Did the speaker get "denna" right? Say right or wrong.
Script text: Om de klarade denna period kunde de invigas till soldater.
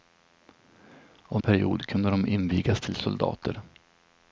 wrong